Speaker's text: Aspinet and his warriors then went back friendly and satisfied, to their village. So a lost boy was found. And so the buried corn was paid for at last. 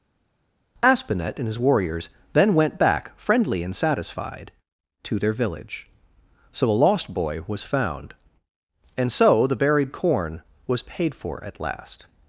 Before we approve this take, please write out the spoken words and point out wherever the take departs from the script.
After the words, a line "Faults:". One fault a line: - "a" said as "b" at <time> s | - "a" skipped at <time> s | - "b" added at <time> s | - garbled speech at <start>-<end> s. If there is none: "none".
Aspinet and his warriors then went back friendly and satisfied, to their village. So a lost boy was found. And so the buried corn was paid for at last.
Faults:
none